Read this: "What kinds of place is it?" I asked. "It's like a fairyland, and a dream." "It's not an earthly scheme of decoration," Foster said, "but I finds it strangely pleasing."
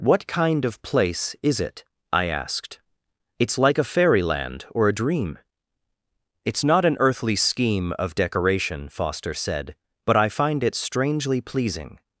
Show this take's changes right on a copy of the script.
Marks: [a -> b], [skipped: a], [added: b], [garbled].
"What [kinds -> kind] of place is it?" I asked. "It's like a fairyland, [and -> or] a dream." "It's not an earthly scheme of decoration," Foster said, "but I [finds -> find] it strangely pleasing."